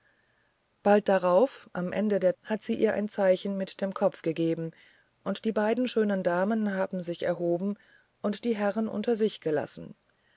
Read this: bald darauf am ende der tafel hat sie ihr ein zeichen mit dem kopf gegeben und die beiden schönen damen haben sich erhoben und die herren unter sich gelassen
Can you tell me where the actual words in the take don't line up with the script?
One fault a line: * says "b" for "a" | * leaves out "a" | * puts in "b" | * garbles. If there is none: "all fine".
* leaves out "tafel"